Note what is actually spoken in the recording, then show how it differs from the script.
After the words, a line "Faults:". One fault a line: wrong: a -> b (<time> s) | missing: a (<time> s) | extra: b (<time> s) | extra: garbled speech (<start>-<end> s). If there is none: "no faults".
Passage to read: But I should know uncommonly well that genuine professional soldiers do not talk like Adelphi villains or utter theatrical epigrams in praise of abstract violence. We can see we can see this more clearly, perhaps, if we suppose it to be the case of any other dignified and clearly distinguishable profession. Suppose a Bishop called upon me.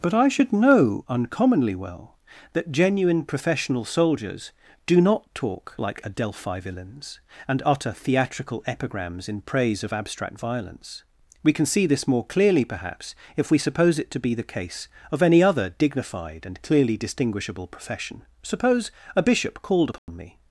But I should know uncommonly well that genuine professional soldiers do not talk like Adelphi villains and utter theatrical epigrams in praise of abstract violence. We can see this more clearly, perhaps, if we suppose it to be the case of any other dignified and clearly distinguishable profession. Suppose a Bishop called upon me.
Faults:
wrong: or -> and (7.5 s)
missing: we can see (11.8 s)